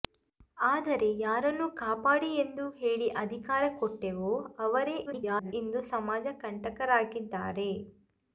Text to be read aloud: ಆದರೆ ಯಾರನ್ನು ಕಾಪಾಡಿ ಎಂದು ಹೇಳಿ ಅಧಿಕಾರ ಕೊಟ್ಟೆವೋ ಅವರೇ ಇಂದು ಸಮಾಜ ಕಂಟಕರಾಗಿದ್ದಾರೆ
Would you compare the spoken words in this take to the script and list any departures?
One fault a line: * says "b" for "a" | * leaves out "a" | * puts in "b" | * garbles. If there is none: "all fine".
* garbles